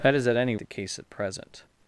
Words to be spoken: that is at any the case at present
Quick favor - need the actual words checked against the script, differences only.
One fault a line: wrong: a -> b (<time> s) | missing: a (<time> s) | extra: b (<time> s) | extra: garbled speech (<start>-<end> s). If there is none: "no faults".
no faults